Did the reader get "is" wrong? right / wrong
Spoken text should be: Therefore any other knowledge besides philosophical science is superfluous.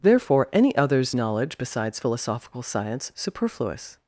wrong